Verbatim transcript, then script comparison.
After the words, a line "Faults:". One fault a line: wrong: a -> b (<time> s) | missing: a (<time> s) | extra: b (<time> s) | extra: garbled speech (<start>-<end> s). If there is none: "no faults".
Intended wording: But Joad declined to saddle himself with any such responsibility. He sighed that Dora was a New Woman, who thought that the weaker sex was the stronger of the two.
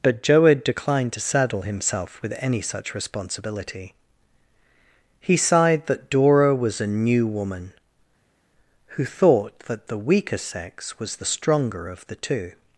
But Joad declined to saddle himself with any such responsibility. He sighed that Dora was a New Woman, who thought that the weaker sex was the stronger of the two.
Faults:
no faults